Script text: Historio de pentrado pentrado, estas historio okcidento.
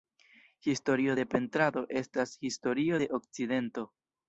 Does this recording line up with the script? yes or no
no